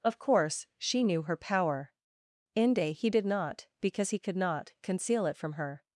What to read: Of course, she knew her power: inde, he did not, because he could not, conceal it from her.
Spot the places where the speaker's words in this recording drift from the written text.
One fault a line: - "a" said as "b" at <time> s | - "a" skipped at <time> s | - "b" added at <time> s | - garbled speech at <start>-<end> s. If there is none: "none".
none